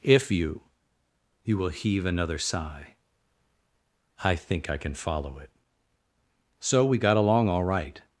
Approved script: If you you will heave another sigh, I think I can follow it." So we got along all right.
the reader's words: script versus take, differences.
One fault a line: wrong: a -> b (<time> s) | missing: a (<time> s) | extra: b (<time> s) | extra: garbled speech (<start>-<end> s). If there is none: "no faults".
no faults